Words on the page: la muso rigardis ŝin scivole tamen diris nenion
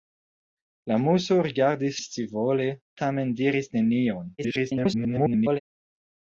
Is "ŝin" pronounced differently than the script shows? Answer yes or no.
yes